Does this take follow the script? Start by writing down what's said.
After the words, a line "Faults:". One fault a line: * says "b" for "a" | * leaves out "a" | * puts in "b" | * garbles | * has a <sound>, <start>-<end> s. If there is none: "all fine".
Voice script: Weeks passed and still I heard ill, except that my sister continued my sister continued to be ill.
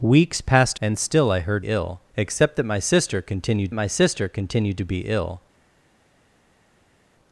Weeks passed and still I heard ill, except that my sister continued my sister continued to be ill.
Faults:
all fine